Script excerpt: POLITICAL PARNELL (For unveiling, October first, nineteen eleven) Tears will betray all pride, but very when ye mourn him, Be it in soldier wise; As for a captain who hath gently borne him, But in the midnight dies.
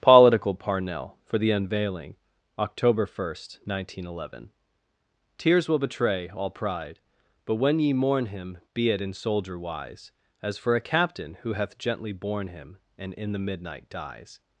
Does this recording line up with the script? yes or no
no